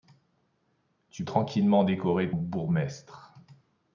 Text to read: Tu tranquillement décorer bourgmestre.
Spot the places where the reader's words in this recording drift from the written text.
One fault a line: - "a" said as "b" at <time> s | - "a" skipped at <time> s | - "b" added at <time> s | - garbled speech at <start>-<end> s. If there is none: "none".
none